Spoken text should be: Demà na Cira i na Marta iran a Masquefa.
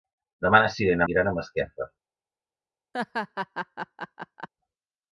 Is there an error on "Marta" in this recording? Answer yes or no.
yes